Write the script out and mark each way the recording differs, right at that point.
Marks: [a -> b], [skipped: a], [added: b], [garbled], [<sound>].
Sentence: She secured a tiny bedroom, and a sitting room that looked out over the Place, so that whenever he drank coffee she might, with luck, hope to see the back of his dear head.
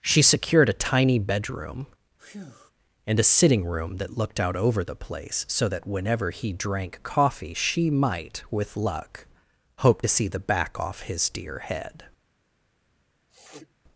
She secured a tiny bedroom, [breath] and a sitting room that looked out over the Place, so that whenever he drank coffee she might, with luck, hope to see the back [of -> off] his dear head. [sniff]